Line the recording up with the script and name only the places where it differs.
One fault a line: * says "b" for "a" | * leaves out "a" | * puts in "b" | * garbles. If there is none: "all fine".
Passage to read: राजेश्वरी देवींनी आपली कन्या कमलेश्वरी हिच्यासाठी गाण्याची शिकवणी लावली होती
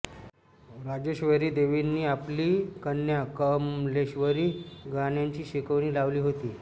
* leaves out "हिच्यासाठी"